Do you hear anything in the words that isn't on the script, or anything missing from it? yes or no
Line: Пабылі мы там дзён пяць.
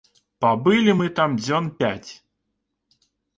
no